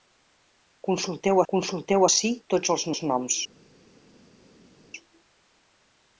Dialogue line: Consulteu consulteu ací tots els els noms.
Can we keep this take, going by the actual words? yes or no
yes